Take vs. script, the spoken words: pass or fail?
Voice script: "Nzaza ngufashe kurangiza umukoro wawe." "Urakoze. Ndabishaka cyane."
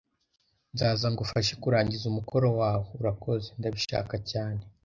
pass